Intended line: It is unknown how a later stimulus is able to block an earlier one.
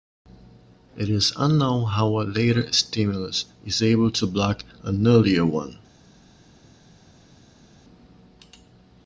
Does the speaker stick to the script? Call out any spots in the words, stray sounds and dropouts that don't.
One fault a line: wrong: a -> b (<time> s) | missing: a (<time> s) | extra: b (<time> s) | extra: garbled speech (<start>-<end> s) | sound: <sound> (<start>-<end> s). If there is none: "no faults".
no faults